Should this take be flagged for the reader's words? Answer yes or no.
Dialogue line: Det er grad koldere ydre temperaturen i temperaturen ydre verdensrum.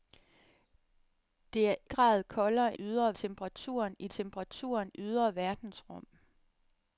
no